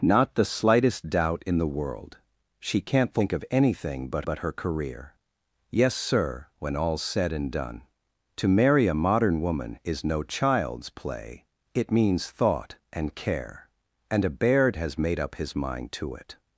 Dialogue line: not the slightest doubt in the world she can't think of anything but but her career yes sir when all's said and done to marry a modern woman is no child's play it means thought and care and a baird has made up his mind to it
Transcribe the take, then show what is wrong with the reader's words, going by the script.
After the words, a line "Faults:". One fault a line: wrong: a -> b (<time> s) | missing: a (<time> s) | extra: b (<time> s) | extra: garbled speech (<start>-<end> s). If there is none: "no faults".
not the slightest doubt in the world she can't think of anything but but her career yes sir when all's said and done to marry a modern woman is no child's play it means thought and care and a baird has made up his mind to it
Faults:
no faults